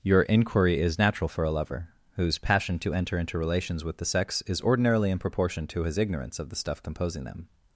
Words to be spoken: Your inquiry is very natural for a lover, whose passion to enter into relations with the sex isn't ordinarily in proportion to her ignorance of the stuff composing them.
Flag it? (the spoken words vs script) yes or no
yes